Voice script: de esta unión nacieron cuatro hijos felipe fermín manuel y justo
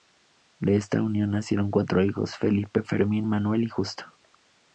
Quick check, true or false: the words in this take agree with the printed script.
true